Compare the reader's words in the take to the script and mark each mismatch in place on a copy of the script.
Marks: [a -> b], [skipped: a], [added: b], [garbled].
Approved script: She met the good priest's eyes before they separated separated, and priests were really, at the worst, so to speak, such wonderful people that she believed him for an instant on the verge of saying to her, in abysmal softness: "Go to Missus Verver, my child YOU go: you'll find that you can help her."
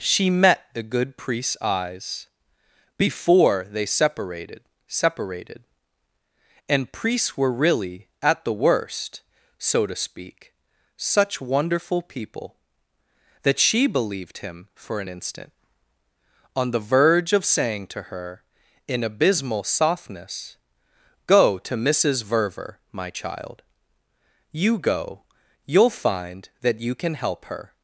She met the good priest's eyes before they separated separated, and priests were really, at the worst, so to speak, such wonderful people that she believed him for an instant on the verge of saying to her, in abysmal softness: "Go to Missus Verver, my child YOU go: you'll find that you can help her."